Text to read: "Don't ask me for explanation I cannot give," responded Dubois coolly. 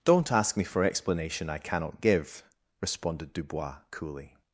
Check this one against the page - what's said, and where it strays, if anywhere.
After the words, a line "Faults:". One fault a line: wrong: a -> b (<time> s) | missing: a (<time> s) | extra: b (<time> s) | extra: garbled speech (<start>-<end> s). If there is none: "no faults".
"Don't ask me for explanation I cannot give," responded Dubois coolly.
Faults:
no faults